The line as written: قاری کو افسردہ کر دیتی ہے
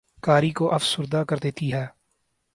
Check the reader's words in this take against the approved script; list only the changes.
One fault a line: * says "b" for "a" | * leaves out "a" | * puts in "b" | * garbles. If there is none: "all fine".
all fine